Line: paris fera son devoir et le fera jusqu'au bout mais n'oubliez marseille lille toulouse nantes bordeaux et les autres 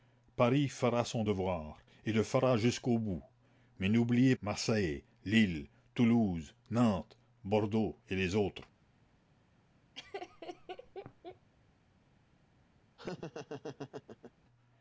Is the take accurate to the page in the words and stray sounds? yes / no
no